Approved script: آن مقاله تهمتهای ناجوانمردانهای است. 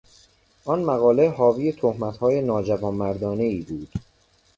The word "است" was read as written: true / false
false